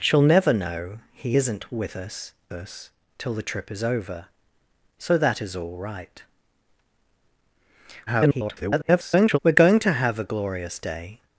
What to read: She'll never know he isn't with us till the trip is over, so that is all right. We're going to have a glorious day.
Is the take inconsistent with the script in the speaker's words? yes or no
yes